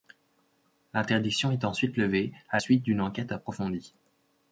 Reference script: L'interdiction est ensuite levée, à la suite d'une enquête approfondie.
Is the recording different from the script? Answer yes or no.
yes